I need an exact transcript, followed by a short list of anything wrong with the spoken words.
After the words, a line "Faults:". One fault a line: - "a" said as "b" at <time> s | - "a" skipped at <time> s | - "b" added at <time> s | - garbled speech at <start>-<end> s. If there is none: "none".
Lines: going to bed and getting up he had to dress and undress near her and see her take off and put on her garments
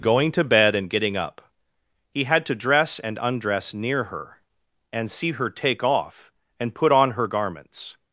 going to bed and getting up he had to dress and undress near her and see her take off and put on her garments
Faults:
none